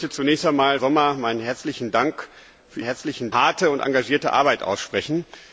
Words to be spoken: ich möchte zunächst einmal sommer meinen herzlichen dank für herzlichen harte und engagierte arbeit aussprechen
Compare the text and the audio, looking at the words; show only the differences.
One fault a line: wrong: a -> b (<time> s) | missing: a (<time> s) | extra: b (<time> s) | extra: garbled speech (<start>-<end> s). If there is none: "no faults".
no faults